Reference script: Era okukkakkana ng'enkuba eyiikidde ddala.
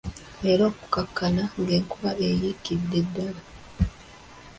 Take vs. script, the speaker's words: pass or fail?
pass